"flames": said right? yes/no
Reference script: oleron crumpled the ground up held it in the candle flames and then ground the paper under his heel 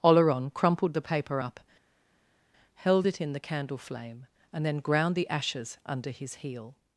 no